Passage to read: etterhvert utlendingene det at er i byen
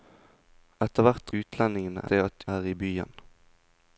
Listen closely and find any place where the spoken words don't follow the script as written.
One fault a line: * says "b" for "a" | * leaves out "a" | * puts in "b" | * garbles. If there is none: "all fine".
all fine